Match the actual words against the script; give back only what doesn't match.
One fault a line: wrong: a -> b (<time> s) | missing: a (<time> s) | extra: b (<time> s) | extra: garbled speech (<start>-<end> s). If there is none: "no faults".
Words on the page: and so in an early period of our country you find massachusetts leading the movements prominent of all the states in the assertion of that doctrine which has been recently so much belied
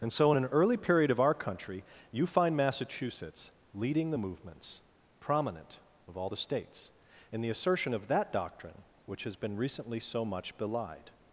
no faults